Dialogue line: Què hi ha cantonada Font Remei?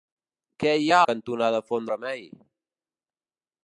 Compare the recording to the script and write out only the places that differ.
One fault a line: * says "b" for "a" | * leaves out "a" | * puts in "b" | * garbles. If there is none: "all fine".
all fine